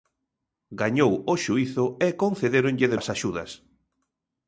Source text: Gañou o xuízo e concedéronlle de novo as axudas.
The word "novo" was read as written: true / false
false